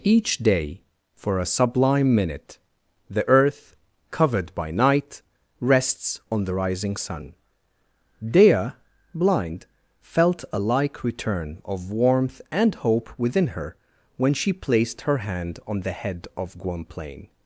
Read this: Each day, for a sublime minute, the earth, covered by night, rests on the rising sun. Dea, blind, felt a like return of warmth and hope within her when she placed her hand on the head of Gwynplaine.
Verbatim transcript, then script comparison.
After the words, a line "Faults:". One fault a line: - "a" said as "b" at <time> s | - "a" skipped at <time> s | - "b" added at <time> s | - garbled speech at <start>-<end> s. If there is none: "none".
Each day, for a sublime minute, the earth, covered by night, rests on the rising sun. Dea, blind, felt a like return of warmth and hope within her when she placed her hand on the head of Gwynplaine.
Faults:
none